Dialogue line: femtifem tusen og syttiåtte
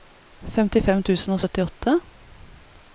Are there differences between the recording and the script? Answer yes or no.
no